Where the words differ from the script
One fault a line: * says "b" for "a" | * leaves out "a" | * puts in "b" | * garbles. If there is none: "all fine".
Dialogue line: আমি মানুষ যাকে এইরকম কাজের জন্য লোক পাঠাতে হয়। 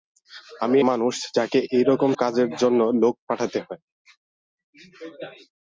all fine